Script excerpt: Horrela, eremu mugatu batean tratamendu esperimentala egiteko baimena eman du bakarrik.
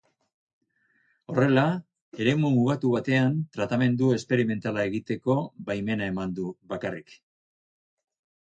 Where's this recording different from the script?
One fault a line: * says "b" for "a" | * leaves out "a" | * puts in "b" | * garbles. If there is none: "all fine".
all fine